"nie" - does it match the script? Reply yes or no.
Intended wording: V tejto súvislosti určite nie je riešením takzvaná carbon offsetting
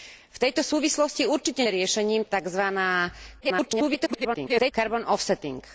no